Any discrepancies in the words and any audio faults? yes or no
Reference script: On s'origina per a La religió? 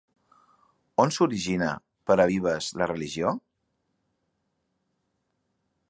yes